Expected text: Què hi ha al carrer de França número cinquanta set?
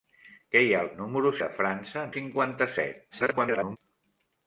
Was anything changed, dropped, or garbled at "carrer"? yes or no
yes